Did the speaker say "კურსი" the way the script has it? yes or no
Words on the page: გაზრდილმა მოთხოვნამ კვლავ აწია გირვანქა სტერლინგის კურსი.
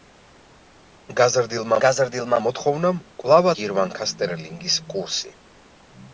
yes